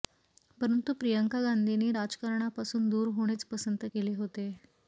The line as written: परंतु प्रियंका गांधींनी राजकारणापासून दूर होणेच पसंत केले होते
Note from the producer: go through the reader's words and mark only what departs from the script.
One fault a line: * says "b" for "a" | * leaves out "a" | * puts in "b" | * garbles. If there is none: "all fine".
all fine